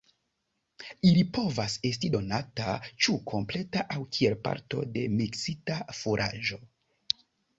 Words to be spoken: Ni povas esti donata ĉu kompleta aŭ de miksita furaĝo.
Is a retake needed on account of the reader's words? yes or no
yes